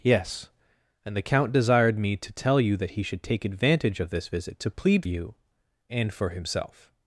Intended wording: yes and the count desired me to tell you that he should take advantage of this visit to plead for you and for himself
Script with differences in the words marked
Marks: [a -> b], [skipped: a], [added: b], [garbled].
yes and the count desired me to tell you that he should take advantage of this visit to plead [skipped: for] you and for himself